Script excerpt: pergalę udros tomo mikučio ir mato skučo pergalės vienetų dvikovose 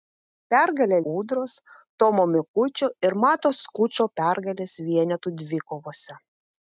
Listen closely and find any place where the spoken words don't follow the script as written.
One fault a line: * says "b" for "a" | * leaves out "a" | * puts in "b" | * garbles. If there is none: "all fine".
all fine